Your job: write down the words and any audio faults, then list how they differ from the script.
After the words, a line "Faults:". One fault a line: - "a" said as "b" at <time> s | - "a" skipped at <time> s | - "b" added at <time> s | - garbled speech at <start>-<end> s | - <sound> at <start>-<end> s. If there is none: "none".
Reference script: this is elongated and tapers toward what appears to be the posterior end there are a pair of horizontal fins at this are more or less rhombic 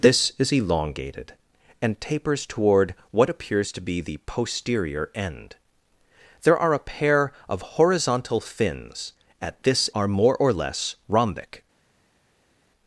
this is elongated and tapers toward what appears to be the posterior end there are a pair of horizontal fins at this are more or less rhombic
Faults:
none